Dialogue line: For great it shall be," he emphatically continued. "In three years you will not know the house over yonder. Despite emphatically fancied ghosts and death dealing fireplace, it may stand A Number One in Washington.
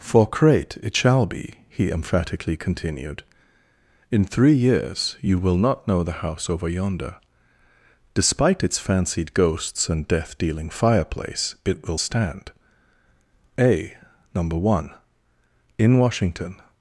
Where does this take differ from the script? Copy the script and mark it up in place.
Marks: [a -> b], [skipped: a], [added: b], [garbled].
For great it shall be," he emphatically continued. "In three years you will not know the house over yonder. Despite [emphatically -> its] fancied ghosts and death dealing fireplace, it [may -> will] stand A Number One in Washington.